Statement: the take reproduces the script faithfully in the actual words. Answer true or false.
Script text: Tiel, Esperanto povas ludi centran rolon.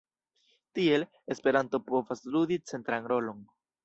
true